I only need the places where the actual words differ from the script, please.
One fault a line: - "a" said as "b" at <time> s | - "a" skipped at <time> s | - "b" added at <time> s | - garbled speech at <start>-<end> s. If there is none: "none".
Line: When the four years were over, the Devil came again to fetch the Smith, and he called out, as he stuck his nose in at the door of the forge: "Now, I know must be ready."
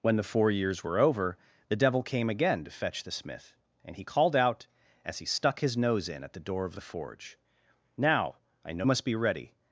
none